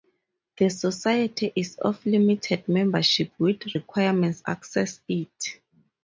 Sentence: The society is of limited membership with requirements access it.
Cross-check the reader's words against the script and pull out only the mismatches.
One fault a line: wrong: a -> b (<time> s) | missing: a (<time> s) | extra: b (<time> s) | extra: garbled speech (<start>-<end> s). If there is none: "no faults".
no faults